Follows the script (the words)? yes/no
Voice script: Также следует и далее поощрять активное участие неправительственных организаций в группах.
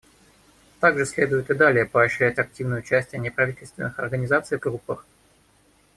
yes